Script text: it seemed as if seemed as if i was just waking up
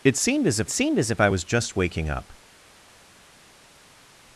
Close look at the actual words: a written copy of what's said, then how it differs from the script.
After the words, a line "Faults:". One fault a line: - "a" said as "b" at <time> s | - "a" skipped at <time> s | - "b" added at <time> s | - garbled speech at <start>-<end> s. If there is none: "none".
it seemed as if seemed as if i was just waking up
Faults:
none